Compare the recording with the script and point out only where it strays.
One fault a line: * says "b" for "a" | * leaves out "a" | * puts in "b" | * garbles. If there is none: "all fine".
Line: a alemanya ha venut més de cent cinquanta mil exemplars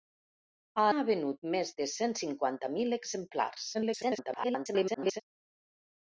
* leaves out "alemanya"
* garbles